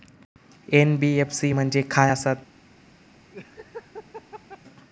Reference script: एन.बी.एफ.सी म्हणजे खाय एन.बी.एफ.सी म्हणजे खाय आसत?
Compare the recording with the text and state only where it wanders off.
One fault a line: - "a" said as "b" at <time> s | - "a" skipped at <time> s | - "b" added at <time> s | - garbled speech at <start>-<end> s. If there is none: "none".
- "एन.बी.एफ.सी म्हणजे खाय" skipped at 2.1 s